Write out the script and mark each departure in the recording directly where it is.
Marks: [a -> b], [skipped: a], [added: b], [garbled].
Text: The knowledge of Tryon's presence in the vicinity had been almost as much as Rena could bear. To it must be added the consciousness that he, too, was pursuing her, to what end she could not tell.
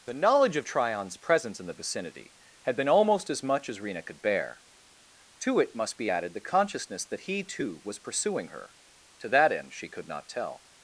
The knowledge of Tryon's presence in the vicinity had been almost as much as Rena could bear. To it must be added the consciousness that he, too, was pursuing her, to [what -> that] end she could not tell.